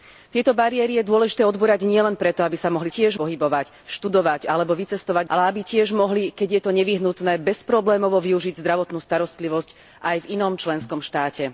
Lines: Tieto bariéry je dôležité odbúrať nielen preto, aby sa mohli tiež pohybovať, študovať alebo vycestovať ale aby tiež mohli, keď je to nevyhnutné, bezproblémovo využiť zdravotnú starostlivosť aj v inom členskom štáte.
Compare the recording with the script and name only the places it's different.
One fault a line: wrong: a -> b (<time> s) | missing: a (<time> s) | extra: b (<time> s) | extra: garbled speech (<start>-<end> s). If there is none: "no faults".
no faults